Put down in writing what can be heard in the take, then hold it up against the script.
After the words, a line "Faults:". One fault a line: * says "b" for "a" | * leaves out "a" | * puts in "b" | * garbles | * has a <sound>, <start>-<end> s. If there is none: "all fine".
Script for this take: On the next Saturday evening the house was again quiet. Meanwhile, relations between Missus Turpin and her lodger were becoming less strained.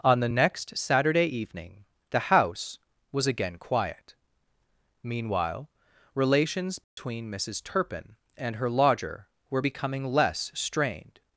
On the next Saturday evening the house was again quiet. Meanwhile, relations between Missus Turpin and her lodger were becoming less strained.
Faults:
* has a dropout, 6.8-7.0 s